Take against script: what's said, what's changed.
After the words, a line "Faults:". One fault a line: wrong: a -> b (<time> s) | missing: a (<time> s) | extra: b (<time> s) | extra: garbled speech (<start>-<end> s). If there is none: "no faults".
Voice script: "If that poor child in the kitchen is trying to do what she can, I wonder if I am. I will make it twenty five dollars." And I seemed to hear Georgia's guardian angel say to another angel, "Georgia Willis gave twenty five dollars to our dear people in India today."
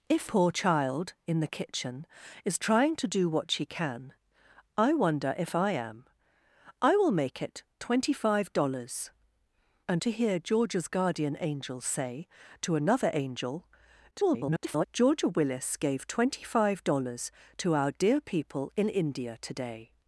"If poor child in the kitchen is trying to do what she can, I wonder if I am. I will make it twenty five dollars." And to hear Georgia's guardian angel say to another angel, [garbled] "Georgia Willis gave twenty five dollars to our dear people in India today."
Faults:
missing: that (0.3 s)
missing: I seemed (10.0 s)
extra: garbled speech (14.1-14.9 s)